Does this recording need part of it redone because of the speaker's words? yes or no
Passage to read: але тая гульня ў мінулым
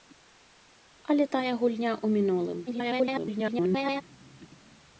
yes